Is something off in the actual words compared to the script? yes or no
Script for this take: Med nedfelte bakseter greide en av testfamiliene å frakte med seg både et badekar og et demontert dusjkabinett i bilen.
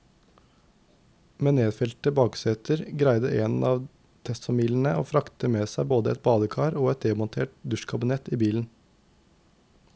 no